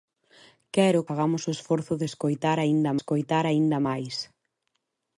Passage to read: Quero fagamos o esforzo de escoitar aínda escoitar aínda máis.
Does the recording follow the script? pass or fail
pass